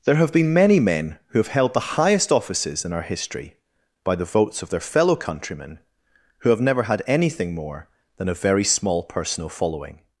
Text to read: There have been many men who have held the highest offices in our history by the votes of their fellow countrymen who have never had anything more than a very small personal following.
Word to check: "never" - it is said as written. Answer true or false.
true